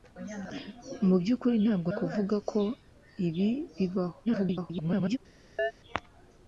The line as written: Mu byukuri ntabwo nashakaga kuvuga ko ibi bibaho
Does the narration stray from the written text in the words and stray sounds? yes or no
yes